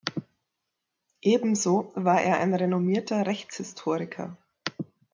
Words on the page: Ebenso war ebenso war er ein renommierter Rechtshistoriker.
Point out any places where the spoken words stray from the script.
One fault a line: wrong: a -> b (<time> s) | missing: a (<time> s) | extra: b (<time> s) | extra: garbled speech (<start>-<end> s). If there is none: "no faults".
missing: ebenso war (2.2 s)